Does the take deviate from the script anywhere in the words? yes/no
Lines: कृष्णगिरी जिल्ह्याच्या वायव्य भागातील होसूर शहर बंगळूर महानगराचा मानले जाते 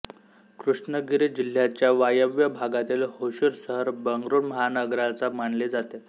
no